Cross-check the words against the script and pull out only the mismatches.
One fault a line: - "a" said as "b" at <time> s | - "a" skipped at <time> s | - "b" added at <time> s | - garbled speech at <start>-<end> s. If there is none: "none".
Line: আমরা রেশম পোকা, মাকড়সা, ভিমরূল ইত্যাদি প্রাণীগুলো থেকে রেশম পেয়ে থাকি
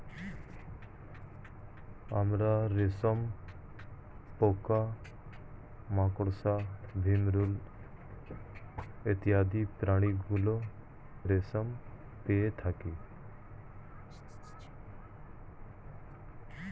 - "থেকে" skipped at 10.6 s